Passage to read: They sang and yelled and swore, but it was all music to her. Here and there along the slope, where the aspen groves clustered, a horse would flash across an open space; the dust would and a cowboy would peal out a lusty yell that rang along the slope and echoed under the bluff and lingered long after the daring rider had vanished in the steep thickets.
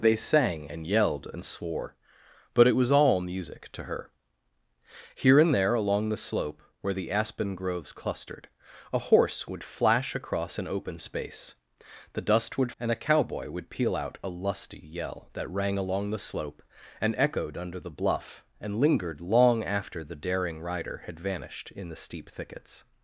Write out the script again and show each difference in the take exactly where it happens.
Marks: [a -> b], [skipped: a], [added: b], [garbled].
They sang and yelled and swore, but it was all music to her. Here and there along the slope, where the aspen groves clustered, a horse would flash across an open space; the dust would and a cowboy would peal out a lusty yell that rang along the slope and echoed under the bluff and lingered long after the daring rider had vanished in the steep thickets.